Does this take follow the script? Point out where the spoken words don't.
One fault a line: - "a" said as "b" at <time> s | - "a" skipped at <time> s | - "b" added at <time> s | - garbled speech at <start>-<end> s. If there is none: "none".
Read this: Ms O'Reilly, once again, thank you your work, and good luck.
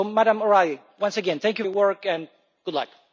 none